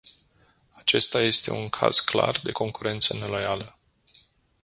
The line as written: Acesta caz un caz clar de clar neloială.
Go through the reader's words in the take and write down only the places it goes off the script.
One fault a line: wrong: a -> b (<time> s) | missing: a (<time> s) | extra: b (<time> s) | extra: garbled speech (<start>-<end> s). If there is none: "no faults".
wrong: caz -> este (1.2 s)
wrong: clar -> concurență (2.5 s)